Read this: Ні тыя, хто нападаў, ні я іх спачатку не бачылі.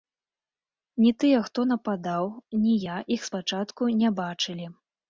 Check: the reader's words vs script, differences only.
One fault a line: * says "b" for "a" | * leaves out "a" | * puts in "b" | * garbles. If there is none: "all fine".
all fine